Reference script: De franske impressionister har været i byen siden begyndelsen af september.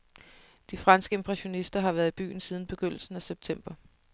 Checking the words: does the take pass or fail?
pass